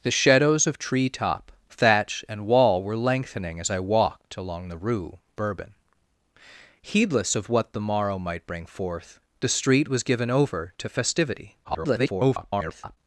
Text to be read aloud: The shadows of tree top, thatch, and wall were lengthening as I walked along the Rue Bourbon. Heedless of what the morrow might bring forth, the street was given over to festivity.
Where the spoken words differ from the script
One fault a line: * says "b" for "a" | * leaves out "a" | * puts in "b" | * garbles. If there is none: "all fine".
* garbles